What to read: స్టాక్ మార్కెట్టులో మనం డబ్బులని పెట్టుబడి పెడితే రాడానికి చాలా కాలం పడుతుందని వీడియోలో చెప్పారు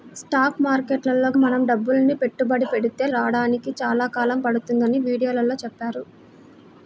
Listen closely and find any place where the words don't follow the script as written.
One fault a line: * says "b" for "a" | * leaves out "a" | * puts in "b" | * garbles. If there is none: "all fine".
all fine